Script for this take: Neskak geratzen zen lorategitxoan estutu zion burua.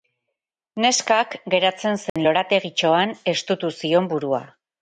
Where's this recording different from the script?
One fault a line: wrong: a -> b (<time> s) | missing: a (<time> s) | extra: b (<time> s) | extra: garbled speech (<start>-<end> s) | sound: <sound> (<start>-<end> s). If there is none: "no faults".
sound: dropout (2.1-2.2 s)